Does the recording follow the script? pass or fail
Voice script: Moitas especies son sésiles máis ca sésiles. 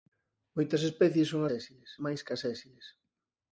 pass